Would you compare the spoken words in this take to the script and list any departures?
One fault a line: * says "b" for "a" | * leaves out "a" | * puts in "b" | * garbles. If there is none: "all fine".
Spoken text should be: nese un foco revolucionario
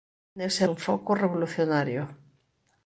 all fine